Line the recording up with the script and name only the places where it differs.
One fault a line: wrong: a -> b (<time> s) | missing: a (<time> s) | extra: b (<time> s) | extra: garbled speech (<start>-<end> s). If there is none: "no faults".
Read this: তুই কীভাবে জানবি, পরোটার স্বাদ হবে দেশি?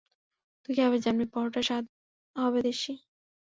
no faults